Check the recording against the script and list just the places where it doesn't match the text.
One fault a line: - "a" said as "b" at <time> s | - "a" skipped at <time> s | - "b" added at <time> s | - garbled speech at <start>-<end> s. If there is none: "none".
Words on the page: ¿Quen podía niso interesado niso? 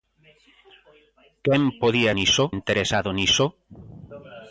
none